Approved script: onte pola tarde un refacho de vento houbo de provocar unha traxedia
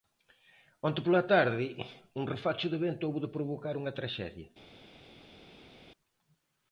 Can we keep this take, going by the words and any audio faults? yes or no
yes